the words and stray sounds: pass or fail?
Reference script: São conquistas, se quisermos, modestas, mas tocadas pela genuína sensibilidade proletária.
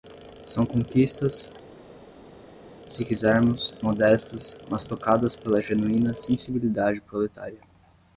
pass